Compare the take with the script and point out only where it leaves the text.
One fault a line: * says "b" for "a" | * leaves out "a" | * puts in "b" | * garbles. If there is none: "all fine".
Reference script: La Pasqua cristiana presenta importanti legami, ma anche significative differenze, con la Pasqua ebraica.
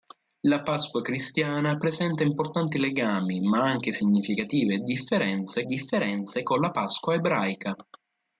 * puts in "differenze"